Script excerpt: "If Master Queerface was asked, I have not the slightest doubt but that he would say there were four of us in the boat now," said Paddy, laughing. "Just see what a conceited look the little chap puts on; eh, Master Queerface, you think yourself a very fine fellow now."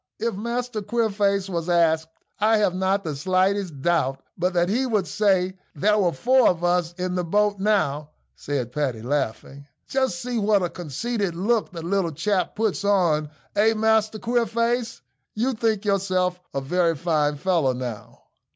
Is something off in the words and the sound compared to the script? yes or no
no